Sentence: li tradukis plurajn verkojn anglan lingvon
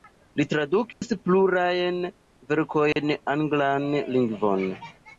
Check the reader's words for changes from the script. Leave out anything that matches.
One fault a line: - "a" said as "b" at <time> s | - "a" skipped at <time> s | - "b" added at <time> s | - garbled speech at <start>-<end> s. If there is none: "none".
none